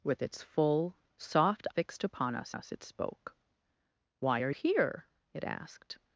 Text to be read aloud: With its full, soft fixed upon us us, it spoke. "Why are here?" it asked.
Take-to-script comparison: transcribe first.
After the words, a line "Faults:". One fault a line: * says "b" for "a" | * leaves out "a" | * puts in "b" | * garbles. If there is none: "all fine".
With its full, soft fixed upon us us, it spoke. "Why are here?" it asked.
Faults:
all fine